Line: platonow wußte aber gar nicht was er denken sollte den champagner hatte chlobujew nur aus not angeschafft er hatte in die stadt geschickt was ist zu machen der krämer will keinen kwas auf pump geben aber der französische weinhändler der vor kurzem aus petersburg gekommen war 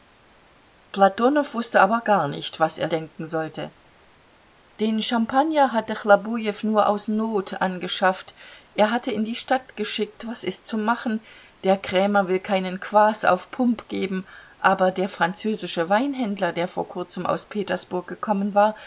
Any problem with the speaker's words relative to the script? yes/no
no